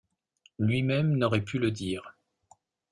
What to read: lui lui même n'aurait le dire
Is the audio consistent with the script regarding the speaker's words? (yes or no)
no